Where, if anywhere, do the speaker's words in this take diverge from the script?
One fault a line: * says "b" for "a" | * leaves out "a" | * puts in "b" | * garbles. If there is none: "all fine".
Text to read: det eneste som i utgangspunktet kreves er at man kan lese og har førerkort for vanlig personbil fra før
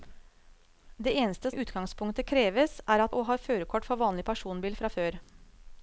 * leaves out "som"
* leaves out "man kan lese"